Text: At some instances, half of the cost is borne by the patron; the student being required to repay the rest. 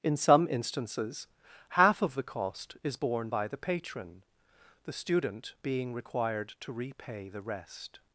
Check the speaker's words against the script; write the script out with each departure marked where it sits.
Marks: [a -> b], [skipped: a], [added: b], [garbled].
[At -> In] some instances, half of the cost is borne by the patron; the student being required to repay the rest.